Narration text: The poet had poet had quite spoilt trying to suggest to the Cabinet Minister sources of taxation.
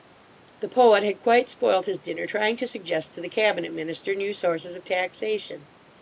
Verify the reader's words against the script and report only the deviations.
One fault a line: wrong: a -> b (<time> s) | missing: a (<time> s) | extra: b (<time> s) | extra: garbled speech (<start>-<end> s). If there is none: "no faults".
wrong: poet had quite spoilt -> quite spoilt his dinner (1.2 s)
extra: new (4.1 s)